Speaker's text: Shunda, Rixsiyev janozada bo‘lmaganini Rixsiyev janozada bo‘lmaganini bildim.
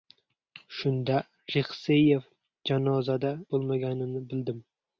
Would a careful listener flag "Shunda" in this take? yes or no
no